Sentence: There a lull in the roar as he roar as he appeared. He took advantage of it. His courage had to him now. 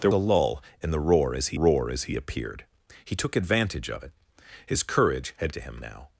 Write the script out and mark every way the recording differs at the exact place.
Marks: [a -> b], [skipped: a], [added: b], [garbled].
There a lull in the roar as he roar as he appeared. He took advantage of it. His courage had to him now.